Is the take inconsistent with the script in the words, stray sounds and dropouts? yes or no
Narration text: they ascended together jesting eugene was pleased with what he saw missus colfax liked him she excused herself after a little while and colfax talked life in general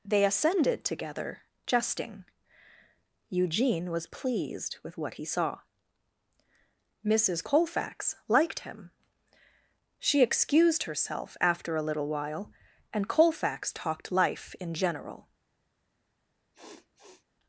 yes